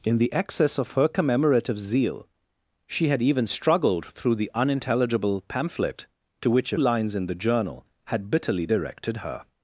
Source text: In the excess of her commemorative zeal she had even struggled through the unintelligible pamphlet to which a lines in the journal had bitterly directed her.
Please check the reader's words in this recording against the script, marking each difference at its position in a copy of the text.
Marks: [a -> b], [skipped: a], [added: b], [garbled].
In the excess of her commemorative zeal she had even struggled through the unintelligible pamphlet to which a lines in the journal had bitterly directed her.